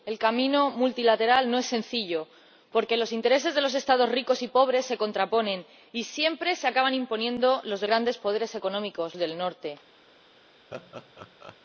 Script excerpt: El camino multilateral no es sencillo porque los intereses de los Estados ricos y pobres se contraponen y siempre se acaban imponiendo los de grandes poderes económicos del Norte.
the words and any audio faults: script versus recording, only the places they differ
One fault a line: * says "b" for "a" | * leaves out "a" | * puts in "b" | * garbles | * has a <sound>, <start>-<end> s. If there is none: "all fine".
* has a laugh, 10.7-11.6 s